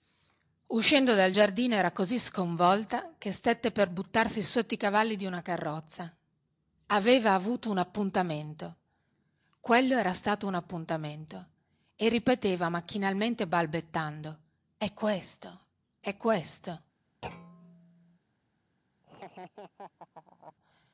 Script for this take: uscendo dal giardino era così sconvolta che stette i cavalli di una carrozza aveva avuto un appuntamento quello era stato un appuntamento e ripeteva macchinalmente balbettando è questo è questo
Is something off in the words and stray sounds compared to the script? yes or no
yes